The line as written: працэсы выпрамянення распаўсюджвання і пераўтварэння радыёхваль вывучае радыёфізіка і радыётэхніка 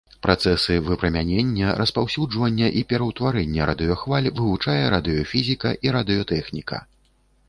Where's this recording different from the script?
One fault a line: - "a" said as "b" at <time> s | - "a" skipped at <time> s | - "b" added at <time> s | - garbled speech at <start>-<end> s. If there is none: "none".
none